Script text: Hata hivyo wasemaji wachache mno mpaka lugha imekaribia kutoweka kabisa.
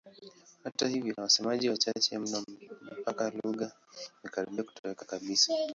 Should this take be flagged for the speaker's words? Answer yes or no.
no